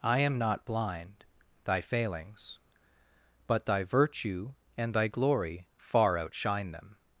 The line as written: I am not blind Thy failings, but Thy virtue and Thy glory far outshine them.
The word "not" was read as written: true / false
true